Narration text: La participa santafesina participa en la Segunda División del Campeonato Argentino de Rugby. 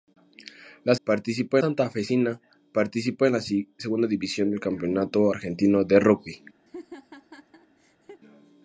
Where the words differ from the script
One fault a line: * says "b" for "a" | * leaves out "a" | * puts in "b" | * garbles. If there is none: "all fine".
all fine